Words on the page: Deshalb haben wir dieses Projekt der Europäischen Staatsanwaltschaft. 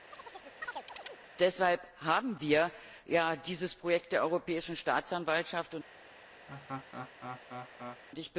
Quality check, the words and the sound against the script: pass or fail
fail